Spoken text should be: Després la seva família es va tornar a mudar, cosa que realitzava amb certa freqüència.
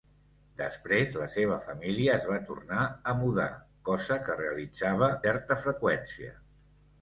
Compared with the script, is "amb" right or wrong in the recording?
wrong